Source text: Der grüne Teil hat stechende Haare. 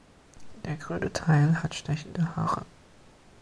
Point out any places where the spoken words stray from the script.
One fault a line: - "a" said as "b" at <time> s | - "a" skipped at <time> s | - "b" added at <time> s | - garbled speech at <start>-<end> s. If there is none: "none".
none